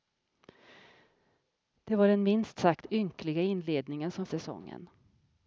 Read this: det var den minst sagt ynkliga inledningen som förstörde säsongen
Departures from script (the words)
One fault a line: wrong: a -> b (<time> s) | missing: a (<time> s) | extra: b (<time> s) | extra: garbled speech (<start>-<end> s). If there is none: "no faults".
missing: förstörde (4.3 s)